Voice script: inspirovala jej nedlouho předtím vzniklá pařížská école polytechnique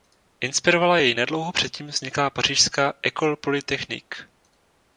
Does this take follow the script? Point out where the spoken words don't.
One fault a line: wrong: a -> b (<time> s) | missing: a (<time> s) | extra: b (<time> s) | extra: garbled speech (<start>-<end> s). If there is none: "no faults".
no faults